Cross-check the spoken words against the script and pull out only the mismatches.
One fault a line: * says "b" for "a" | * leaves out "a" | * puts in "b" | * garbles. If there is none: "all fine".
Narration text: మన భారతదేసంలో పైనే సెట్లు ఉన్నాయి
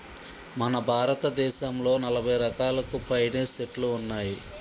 * puts in "నలభై రకాలకు"